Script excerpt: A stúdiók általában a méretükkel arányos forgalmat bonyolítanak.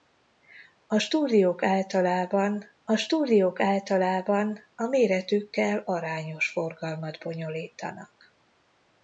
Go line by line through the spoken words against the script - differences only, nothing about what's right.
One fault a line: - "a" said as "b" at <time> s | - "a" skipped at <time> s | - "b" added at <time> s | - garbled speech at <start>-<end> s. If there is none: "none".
- "stúdiók általában a" added at 3.0 s